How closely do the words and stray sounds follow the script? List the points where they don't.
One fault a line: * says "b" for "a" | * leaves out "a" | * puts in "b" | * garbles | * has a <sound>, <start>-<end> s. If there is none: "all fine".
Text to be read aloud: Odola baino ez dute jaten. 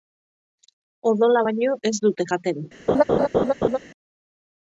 * has a laugh, 2.9-3.8 s